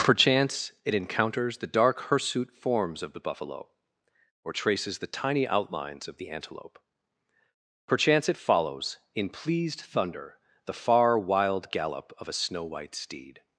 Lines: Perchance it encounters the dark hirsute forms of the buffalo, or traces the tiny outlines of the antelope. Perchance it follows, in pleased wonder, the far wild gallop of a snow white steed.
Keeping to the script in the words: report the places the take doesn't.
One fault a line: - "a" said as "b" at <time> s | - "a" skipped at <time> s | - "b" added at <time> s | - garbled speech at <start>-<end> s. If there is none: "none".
- "wonder" said as "thunder" at 9.8 s